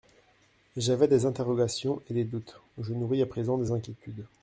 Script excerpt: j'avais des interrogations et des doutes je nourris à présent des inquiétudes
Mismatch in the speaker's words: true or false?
false